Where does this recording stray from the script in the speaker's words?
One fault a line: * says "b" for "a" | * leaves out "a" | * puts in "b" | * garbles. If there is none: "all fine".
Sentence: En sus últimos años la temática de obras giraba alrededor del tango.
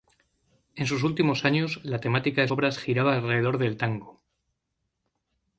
all fine